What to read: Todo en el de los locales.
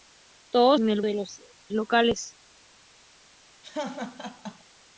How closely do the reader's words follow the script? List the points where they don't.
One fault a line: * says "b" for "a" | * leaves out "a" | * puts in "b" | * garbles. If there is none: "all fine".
all fine